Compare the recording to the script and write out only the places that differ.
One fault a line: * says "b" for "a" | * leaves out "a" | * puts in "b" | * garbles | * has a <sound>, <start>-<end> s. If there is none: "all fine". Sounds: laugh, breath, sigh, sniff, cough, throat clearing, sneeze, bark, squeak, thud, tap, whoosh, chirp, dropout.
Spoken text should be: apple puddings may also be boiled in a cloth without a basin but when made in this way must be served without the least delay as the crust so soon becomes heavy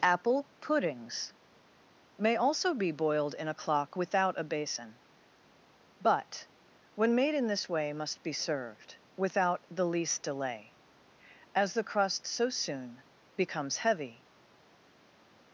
* says "clock" for "cloth"